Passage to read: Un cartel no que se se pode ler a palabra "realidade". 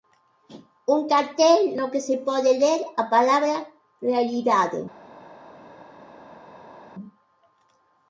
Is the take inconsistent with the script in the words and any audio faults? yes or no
yes